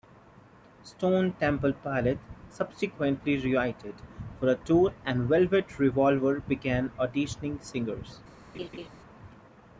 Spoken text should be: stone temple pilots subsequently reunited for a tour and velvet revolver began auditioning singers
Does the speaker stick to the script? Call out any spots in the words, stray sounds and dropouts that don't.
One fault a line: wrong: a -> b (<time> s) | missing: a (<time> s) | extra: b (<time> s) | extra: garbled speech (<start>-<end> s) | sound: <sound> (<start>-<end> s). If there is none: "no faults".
sound: laugh (8.5-8.9 s)